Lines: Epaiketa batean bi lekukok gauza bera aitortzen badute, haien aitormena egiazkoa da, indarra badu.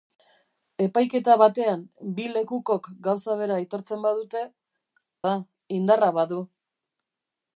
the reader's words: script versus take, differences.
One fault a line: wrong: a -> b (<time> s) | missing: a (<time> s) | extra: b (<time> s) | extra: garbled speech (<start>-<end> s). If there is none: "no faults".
missing: haien aitormena egiazkoa (4.4 s)